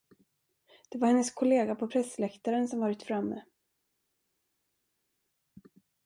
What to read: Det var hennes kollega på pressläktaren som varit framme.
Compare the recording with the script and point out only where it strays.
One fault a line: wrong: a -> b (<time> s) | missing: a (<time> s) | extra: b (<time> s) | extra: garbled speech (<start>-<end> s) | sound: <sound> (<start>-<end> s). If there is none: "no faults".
no faults